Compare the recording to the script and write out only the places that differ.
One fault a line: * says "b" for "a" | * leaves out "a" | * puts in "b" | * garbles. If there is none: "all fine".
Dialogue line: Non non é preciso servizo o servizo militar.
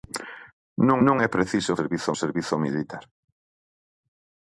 all fine